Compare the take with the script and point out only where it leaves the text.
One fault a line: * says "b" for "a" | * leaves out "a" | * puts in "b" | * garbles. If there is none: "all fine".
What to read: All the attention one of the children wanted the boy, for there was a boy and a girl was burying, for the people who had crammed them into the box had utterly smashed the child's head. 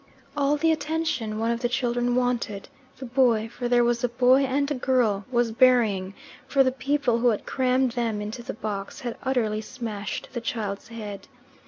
all fine